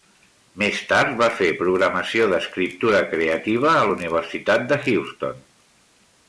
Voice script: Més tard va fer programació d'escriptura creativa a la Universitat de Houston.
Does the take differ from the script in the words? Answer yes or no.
no